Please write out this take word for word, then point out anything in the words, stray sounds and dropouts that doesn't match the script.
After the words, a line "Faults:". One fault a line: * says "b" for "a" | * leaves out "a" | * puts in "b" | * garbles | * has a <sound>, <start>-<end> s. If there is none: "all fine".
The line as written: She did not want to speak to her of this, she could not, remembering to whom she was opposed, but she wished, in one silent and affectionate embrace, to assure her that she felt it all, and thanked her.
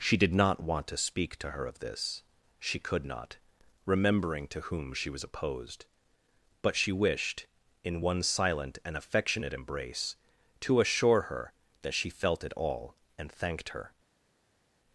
She did not want to speak to her of this, she could not, remembering to whom she was opposed, but she wished, in one silent and affectionate embrace, to assure her that she felt it all, and thanked her.
Faults:
all fine